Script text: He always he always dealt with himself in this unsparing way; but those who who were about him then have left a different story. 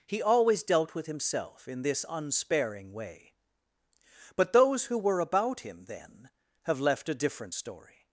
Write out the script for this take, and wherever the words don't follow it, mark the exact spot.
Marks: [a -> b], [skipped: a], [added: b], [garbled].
He always [skipped: he always] dealt with himself in this unsparing way; but those who [skipped: who] were about him then have left a different story.